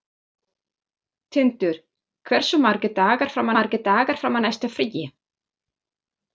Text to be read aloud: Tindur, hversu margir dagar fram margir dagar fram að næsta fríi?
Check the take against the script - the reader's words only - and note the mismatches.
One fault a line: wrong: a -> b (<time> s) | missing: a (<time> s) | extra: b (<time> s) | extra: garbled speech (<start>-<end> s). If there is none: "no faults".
no faults